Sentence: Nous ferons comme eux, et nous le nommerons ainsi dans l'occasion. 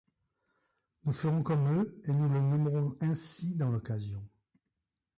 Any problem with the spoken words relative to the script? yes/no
no